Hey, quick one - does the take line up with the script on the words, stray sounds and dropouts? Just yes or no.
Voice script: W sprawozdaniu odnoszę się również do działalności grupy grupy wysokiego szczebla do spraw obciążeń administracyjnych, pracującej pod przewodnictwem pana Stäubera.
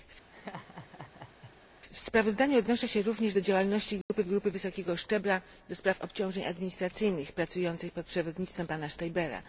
no